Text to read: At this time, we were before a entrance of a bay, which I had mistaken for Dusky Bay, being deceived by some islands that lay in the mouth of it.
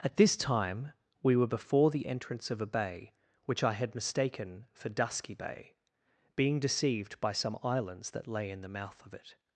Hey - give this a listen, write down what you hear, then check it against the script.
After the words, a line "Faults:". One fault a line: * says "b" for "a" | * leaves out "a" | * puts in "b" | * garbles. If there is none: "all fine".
At this time, we were before the entrance of a bay, which I had mistaken for Dusky Bay, being deceived by some islands that lay in the mouth of it.
Faults:
* says "the" for "a"